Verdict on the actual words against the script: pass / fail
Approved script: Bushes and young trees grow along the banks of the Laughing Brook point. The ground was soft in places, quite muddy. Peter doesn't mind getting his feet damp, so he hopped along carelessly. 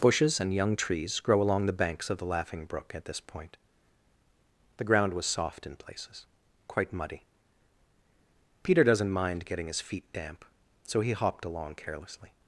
fail